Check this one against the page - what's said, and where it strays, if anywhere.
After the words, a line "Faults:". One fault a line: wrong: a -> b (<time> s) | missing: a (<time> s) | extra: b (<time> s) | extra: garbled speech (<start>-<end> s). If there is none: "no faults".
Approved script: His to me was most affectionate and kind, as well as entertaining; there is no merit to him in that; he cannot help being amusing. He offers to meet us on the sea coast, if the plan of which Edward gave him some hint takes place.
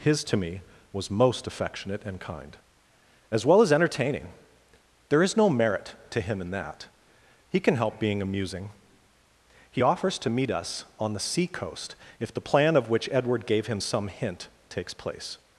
His to me was most affectionate and kind, as well as entertaining; there is no merit to him in that; he can help being amusing. He offers to meet us on the sea coast, if the plan of which Edward gave him some hint takes place.
Faults:
wrong: cannot -> can (7.6 s)